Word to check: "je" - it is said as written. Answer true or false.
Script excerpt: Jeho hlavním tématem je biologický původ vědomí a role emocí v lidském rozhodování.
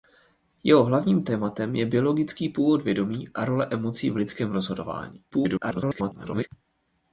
true